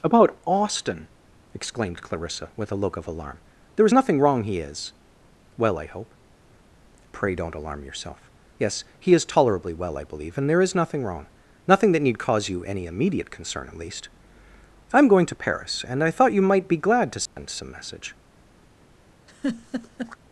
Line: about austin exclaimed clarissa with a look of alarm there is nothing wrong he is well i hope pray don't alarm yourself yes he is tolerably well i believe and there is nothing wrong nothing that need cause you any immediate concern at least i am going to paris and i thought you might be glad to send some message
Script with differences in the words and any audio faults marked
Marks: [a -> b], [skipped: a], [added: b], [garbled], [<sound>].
about austin exclaimed clarissa with a look of alarm there is nothing wrong he is well i hope pray don't alarm yourself yes he is tolerably well i believe and there is nothing wrong nothing that need cause you any immediate concern at least i am going to paris and i thought you might be glad to send [dropout] some message [laugh]